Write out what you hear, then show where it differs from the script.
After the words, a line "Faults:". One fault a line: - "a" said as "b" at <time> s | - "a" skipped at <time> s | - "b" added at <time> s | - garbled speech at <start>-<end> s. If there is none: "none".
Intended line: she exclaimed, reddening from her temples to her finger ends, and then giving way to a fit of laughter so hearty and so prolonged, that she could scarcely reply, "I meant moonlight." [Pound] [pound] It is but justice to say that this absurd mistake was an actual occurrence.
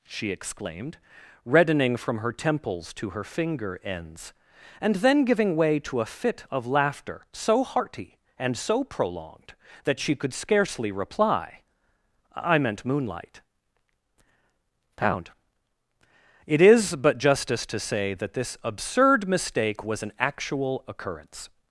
she exclaimed, reddening from her temples to her finger ends, and then giving way to a fit of laughter so hearty and so prolonged, that she could scarcely reply, "I meant moonlight." [Pound] It is but justice to say that this absurd mistake was an actual occurrence.
Faults:
- "pound" skipped at 15.3 s